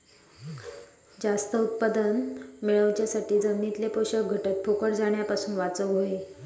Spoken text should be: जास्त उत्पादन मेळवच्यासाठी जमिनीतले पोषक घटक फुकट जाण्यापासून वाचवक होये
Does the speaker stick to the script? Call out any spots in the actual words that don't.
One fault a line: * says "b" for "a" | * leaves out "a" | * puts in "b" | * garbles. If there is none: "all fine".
all fine